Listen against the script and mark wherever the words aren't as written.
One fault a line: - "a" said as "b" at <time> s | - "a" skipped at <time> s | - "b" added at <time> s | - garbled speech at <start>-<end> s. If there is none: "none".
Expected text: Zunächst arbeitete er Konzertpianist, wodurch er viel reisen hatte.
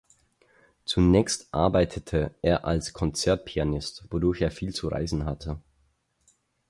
- "als" added at 2.6 s
- "zu" added at 4.7 s